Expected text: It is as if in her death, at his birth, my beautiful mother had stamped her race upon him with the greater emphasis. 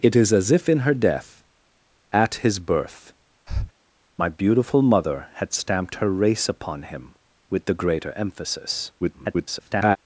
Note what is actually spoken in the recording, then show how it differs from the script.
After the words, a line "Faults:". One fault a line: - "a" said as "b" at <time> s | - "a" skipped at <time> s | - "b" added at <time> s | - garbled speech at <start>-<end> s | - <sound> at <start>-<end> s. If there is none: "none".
It is as if in her death, at his birth, my beautiful mother had stamped her race upon him with the greater emphasis. [garbled]
Faults:
- breath at 3.5-3.7 s
- garbled speech at 9.0-10.0 s